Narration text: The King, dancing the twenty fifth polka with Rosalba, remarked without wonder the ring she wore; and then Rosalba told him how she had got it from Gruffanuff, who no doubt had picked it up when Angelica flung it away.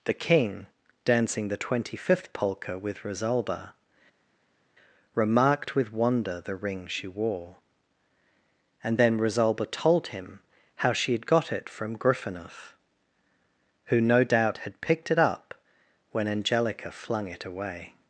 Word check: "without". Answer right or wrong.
wrong